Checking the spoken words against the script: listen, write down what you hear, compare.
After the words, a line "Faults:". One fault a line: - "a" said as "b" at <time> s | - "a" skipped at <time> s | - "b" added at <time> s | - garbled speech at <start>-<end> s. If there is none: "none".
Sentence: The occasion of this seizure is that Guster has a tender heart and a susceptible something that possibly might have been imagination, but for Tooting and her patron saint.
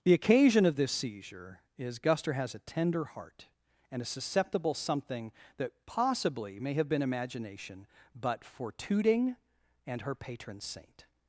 The occasion of this seizure is Guster has a tender heart and a susceptible something that possibly may have been imagination, but for Tooting and her patron saint.
Faults:
- "that" skipped at 2.0 s
- "might" said as "may" at 6.6 s